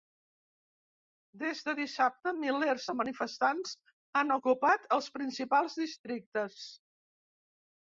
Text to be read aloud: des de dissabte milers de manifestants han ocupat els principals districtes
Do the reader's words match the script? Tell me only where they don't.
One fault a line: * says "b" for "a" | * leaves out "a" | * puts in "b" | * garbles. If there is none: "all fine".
all fine